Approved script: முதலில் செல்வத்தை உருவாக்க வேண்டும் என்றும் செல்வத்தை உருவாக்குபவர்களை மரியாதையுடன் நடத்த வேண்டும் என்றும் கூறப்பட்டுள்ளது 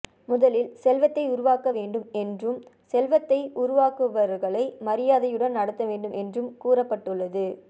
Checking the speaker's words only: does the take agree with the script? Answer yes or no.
yes